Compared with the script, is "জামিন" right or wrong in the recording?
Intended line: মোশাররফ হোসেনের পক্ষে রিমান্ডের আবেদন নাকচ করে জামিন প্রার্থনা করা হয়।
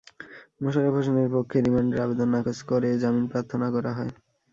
right